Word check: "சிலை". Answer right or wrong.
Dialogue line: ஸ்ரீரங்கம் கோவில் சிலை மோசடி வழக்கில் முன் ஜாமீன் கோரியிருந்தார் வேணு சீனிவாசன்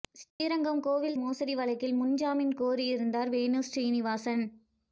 wrong